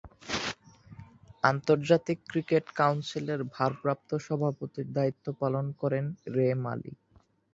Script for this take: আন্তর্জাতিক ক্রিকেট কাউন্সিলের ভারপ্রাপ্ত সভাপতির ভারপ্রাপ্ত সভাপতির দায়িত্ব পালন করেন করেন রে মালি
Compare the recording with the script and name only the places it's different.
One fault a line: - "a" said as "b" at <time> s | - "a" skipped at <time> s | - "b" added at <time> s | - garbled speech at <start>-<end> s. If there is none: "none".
- "ভারপ্রাপ্ত সভাপতির" skipped at 4.9 s
- "করেন" skipped at 6.0 s